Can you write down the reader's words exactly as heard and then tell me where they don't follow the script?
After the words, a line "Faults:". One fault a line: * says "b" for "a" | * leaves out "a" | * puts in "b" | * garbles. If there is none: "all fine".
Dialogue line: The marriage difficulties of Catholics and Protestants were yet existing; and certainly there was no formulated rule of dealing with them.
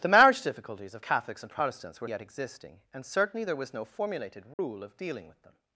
The marriage difficulties of Catholics and Protestants were yet existing; and certainly there was no formulated rule of dealing with them.
Faults:
all fine